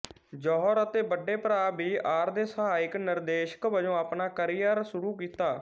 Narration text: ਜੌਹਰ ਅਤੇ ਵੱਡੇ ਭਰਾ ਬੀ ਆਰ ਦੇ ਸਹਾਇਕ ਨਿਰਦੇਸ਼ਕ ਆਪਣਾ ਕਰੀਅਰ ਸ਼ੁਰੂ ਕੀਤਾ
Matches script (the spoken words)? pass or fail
fail